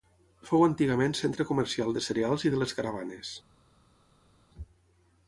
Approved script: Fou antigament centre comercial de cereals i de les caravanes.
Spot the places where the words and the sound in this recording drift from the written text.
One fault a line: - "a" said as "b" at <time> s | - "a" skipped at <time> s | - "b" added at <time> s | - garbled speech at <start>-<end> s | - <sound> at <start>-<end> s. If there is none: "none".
none